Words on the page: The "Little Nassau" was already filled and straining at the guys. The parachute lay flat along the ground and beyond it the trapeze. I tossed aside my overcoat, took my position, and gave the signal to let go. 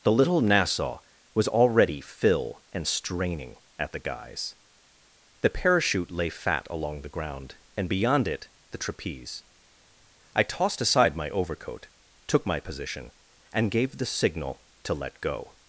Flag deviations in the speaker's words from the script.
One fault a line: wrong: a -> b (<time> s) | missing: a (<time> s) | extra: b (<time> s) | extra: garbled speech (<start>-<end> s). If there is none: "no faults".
wrong: filled -> fill (2.0 s)
wrong: flat -> fat (6.3 s)